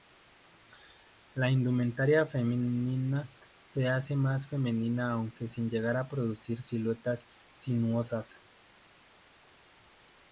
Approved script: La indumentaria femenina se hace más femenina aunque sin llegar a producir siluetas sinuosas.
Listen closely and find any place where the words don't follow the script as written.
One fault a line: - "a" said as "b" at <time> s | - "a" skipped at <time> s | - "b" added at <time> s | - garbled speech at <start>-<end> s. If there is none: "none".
none